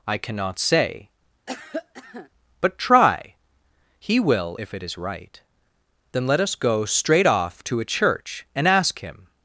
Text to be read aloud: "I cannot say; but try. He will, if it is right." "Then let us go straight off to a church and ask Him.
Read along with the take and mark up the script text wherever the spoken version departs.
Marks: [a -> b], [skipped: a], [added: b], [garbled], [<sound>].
"I cannot say; [cough] but try. He will, if it is right." "Then let us go straight off to a church and ask Him.